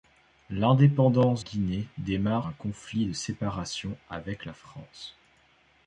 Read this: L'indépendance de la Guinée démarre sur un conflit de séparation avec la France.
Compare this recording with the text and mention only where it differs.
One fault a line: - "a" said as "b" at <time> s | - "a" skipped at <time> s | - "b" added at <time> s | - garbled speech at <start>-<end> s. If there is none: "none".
- "de la" skipped at 1.4 s
- "sur" skipped at 2.5 s